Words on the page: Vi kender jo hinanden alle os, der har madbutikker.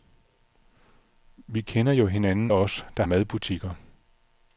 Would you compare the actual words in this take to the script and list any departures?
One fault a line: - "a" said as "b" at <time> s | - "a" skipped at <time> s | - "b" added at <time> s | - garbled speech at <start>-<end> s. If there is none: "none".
- "alle" skipped at 2.5 s
- "har" skipped at 3.0 s